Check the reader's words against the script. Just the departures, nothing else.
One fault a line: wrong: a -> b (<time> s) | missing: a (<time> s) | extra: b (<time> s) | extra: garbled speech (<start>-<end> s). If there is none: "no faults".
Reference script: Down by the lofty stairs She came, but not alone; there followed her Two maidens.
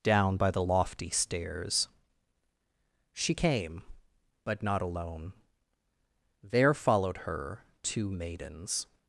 no faults